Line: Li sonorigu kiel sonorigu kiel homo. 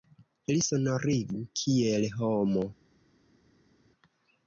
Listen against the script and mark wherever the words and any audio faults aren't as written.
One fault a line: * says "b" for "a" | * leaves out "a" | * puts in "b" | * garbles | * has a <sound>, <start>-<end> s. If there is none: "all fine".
* leaves out "sonorigu kiel"